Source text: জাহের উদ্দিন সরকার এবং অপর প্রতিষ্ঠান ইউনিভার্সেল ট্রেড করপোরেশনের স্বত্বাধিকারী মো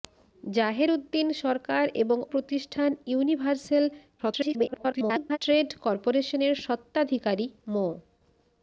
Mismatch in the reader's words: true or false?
true